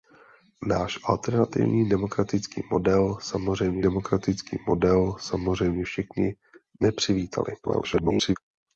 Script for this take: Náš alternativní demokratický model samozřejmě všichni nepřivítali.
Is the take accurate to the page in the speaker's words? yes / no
no